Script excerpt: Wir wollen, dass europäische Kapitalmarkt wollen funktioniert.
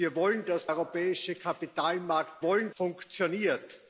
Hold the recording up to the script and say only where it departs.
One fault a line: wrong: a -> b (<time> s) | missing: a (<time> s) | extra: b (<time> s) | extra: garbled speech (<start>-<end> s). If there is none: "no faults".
no faults